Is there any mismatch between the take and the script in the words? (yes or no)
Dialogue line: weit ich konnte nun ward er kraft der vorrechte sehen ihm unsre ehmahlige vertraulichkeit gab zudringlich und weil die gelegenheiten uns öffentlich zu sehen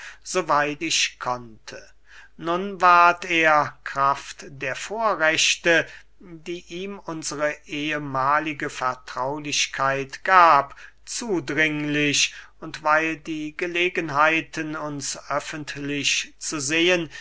yes